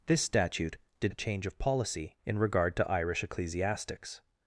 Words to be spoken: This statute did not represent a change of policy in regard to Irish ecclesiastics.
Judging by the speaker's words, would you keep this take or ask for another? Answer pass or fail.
fail